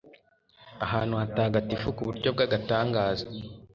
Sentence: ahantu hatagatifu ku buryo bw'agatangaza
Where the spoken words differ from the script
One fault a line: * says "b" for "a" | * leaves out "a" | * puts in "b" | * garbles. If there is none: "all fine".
all fine